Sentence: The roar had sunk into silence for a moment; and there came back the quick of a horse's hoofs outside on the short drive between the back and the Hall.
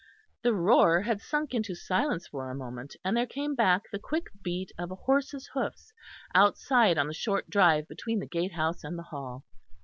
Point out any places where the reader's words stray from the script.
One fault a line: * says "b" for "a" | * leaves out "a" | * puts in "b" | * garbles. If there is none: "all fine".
* puts in "beat"
* says "gatehouse" for "back"